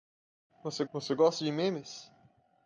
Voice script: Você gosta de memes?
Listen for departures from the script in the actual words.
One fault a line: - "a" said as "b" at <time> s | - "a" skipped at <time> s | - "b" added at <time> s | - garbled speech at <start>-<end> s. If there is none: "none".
- "você" added at 0.9 s